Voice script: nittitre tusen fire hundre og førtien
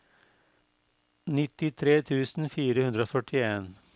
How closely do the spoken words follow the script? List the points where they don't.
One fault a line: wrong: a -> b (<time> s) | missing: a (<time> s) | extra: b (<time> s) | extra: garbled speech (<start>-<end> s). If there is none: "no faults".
no faults